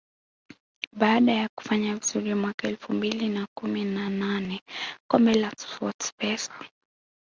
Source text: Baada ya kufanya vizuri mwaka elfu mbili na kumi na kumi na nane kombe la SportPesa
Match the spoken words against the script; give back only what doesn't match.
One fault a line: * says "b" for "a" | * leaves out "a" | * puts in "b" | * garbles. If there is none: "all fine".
* leaves out "kumi na"